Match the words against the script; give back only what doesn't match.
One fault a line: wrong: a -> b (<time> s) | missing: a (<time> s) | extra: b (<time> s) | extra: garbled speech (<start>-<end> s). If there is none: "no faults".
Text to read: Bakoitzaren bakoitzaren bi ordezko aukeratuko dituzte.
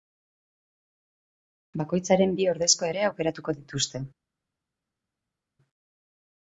missing: bakoitzaren (2.4 s)
extra: ere (2.9 s)